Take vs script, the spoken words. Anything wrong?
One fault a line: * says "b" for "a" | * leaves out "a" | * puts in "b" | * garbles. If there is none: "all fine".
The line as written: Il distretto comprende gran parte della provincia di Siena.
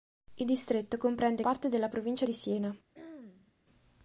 * leaves out "gran"